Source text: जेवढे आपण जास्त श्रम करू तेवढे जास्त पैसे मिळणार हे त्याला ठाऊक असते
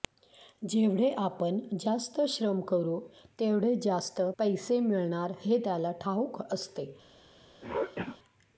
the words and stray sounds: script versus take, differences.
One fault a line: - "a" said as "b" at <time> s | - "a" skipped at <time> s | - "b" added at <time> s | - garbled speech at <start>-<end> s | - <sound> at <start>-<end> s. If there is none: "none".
- throat clearing at 7.6-8.2 s